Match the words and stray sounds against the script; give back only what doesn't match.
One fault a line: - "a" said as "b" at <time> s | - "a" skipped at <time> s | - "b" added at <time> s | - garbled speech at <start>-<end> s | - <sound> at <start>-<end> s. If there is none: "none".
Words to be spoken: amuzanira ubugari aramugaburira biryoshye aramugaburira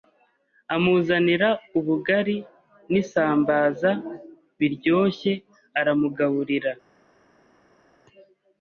- "aramugaburira" said as "n'isambaza" at 2.9 s